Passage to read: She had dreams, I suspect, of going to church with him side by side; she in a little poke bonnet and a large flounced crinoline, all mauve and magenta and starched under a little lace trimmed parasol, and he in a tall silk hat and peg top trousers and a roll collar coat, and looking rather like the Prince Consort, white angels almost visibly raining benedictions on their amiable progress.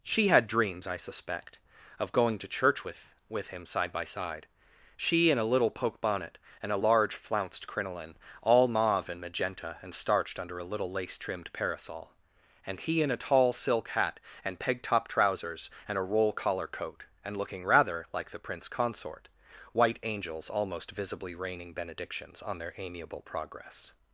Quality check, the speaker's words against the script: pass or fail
fail